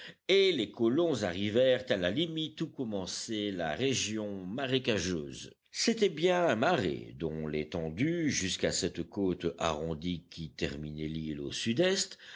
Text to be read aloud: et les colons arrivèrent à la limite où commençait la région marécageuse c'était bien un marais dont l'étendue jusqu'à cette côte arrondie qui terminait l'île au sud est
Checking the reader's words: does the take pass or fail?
pass